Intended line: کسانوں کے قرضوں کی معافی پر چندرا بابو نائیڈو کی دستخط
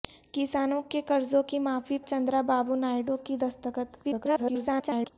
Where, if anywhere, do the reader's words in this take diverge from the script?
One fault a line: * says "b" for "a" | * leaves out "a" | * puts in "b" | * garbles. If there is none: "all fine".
* leaves out "پر"
* garbles